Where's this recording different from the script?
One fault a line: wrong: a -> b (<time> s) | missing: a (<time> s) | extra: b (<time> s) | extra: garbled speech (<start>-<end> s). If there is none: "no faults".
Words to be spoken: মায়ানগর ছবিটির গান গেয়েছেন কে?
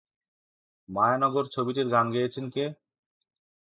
no faults